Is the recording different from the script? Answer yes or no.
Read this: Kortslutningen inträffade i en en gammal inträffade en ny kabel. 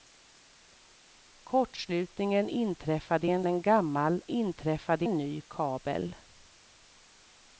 no